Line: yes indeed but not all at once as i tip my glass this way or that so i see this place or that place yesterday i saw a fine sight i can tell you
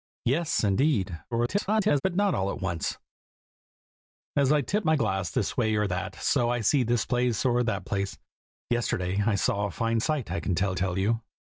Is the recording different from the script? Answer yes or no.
yes